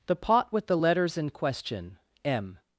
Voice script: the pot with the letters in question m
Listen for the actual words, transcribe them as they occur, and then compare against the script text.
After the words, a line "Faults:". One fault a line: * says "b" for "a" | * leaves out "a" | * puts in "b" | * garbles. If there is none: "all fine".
the pot with the letters in question m
Faults:
all fine